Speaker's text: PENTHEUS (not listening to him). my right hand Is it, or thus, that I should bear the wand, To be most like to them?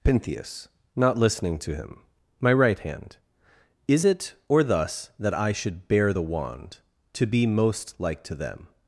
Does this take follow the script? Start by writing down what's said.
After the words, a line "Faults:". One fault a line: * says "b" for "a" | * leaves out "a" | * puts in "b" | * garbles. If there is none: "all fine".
PENTHEUS (not listening to him). my right hand Is it, or thus, that I should bear the wand, To be most like to them?
Faults:
all fine